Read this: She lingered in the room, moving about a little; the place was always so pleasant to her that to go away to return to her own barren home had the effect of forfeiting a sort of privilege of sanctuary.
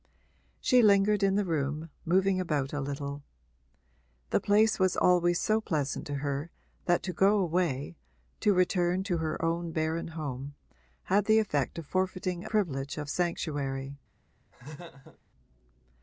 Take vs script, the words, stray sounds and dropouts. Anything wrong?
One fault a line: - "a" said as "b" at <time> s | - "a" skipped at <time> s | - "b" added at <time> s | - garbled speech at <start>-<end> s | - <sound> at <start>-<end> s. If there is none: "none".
- "sort of" skipped at 12.5 s
- laugh at 14.5-15.2 s